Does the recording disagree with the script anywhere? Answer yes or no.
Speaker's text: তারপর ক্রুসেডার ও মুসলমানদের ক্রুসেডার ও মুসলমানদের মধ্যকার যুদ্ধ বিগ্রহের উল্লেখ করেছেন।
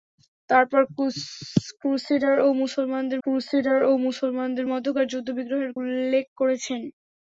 no